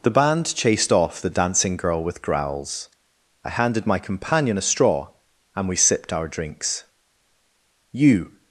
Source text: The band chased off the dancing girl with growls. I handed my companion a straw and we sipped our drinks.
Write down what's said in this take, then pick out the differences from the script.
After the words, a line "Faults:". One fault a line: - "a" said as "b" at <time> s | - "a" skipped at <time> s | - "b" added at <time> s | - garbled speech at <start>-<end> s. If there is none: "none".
The band chased off the dancing girl with growls. I handed my companion a straw and we sipped our drinks. "You
Faults:
- "You" added at 7.9 s